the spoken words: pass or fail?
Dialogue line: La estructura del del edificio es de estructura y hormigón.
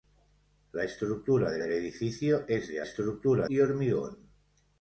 pass